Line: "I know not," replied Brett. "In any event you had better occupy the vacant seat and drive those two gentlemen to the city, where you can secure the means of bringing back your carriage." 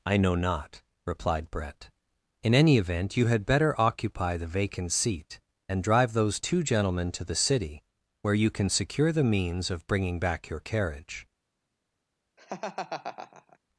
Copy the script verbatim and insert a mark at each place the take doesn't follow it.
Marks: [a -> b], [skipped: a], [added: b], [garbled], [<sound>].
"I know not," replied Brett. "In any event you had better occupy the vacant seat and drive those two gentlemen to the city, where you can secure the means of bringing back your carriage." [laugh]